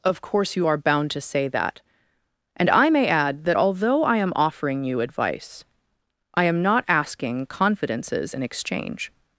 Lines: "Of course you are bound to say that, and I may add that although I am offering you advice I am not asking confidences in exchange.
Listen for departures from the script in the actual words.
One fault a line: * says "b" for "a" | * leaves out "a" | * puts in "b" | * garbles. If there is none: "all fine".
all fine